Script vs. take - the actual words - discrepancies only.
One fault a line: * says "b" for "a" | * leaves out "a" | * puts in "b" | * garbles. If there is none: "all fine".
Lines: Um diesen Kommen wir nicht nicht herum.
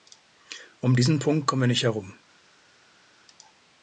* puts in "Punkt"
* leaves out "nicht"